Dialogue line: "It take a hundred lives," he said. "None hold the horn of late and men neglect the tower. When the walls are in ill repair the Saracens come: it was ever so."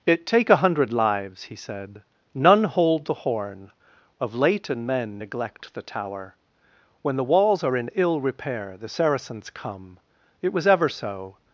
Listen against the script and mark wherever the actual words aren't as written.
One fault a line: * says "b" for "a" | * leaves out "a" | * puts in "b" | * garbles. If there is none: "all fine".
all fine